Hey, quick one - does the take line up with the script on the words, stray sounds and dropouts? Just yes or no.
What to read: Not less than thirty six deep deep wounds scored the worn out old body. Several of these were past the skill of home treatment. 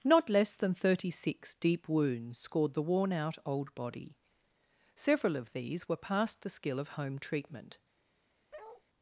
no